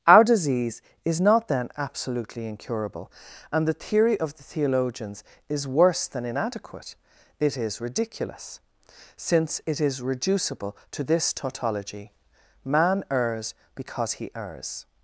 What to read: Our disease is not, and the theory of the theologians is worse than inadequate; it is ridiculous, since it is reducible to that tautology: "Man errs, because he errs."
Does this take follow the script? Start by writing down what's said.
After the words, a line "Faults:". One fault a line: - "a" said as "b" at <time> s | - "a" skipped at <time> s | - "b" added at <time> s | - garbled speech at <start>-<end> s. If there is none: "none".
Our disease is not, then, absolutely incurable, and the theory of the theologians is worse than inadequate; it is ridiculous, since it is reducible to this tautology: "Man errs, because he errs."
Faults:
- "then absolutely incurable" added at 1.5 s
- "that" said as "this" at 11.0 s